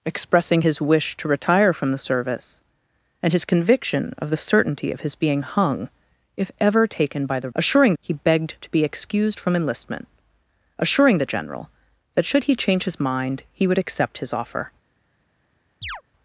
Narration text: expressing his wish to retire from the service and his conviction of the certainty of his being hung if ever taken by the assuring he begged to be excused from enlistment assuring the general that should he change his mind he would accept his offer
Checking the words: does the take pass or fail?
pass